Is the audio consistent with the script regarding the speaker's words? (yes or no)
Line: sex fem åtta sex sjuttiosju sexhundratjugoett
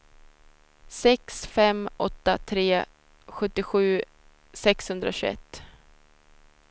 no